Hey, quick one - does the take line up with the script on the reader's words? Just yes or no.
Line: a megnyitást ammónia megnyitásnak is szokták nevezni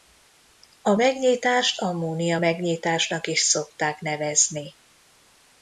yes